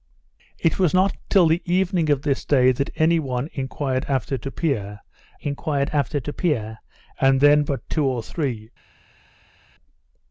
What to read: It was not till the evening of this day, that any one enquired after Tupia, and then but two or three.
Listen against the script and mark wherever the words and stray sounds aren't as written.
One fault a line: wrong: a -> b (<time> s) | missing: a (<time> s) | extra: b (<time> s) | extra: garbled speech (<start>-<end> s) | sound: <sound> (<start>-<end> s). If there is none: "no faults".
extra: enquired after Tupia (5.4 s)